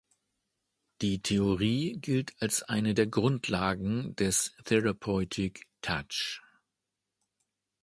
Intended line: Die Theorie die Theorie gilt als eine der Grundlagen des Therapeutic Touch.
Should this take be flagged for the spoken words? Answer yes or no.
yes